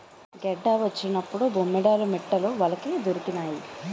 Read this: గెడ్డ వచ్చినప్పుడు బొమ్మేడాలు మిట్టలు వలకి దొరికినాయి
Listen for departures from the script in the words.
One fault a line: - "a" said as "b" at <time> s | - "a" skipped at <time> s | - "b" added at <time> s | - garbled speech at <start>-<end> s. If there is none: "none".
none